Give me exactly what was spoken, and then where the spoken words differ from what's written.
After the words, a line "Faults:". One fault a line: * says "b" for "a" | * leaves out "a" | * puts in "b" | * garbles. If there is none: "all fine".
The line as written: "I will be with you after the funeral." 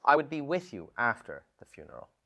"I would be with you after the funeral."
Faults:
* says "would" for "will"